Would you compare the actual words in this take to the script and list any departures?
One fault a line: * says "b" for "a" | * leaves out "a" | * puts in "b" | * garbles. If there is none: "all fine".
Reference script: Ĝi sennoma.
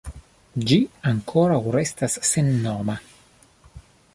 * puts in "ankoraŭ restas"